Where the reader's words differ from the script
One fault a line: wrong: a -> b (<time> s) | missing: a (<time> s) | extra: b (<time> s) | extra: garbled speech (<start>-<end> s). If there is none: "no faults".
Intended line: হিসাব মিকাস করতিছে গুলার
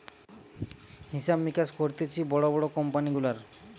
extra: বড় বড় কোম্পানি (2.2 s)